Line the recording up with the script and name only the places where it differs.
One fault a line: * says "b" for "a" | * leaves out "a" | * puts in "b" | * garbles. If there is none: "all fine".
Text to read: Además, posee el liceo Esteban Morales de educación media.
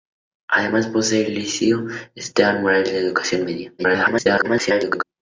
* garbles